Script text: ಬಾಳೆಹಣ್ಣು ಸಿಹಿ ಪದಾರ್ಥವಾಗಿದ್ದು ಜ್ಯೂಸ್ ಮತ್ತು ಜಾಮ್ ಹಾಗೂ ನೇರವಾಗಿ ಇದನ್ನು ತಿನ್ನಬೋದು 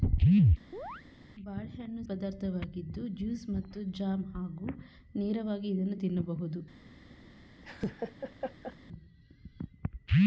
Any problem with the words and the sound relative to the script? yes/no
yes